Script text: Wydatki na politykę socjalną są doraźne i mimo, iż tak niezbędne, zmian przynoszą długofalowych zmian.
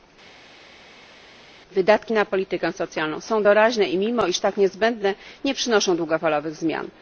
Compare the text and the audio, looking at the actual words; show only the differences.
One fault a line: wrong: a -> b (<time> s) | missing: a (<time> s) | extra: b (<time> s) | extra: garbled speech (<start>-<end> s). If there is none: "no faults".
wrong: zmian -> nie (5.4 s)